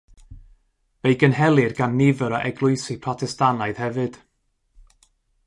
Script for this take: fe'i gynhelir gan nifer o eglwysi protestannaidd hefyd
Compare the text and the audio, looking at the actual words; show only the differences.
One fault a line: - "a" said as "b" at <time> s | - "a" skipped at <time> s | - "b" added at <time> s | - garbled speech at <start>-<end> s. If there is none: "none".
none